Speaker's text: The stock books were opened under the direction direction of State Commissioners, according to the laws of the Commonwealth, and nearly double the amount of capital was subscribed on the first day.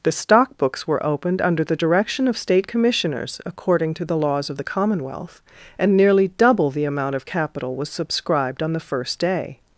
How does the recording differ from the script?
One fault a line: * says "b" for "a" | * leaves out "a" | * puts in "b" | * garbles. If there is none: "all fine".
* leaves out "direction"